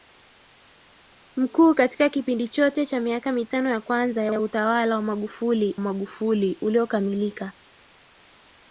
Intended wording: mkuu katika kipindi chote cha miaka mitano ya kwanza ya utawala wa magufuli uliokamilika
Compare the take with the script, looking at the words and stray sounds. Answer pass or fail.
fail